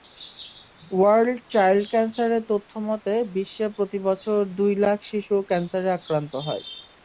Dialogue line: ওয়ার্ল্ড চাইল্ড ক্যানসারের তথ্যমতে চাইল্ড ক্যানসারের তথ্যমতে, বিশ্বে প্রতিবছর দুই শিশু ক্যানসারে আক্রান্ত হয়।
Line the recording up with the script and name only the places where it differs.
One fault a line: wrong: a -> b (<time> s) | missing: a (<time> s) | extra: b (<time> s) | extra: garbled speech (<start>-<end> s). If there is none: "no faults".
missing: চাইল্ড ক্যানসারের তথ্যমতে (3.1 s)
extra: লাখ (4.8 s)